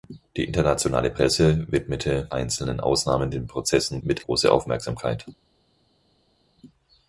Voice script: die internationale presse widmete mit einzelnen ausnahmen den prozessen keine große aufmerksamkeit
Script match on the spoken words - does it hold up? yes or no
no